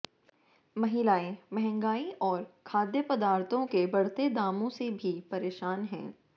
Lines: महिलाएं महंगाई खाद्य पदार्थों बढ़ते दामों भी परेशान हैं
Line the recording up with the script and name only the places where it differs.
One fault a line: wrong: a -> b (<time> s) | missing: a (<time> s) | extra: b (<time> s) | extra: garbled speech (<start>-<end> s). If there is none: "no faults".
extra: और (2.2 s)
extra: के (3.7 s)
extra: से (4.7 s)